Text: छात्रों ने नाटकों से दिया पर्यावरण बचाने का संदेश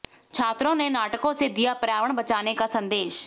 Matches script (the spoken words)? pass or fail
pass